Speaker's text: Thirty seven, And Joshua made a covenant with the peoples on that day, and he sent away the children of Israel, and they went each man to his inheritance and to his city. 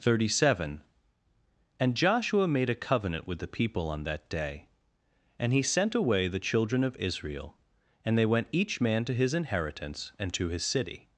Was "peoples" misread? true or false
true